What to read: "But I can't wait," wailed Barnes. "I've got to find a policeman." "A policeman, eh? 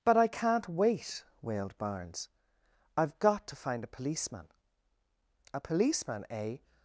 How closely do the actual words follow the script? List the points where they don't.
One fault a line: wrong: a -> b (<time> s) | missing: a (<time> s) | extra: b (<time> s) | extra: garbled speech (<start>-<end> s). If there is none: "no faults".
no faults